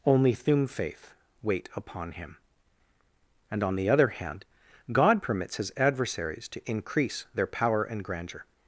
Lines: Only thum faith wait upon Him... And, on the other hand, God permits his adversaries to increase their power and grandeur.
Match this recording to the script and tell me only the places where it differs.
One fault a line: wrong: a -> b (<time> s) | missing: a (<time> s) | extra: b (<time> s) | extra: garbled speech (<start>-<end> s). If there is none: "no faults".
no faults